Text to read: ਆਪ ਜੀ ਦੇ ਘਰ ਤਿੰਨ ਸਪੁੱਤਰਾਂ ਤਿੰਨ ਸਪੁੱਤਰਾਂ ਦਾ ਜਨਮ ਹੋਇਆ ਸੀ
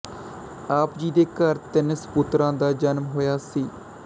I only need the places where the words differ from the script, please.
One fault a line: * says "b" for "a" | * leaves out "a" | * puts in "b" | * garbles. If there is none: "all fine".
* leaves out "ਤਿੰਨ ਸਪੁੱਤਰਾਂ"